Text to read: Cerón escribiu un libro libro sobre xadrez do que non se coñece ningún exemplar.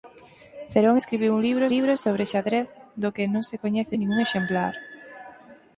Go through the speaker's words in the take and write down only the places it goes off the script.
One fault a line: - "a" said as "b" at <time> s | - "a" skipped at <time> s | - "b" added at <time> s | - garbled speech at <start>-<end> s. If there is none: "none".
none